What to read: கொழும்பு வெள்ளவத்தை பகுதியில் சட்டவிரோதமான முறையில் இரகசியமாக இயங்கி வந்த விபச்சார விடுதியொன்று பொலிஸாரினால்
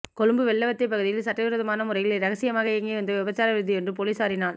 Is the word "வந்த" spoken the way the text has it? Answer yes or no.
yes